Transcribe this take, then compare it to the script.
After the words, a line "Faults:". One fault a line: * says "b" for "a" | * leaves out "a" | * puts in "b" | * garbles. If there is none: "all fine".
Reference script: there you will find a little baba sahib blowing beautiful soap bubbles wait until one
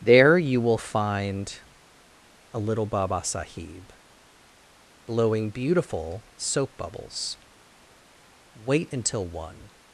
there you will find a little baba sahib blowing beautiful soap bubbles wait until one
Faults:
all fine